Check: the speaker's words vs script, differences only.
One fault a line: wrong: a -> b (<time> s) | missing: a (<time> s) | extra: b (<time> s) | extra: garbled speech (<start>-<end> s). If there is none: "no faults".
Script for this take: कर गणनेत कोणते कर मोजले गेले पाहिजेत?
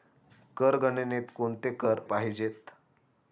missing: मोजले गेले (2.0 s)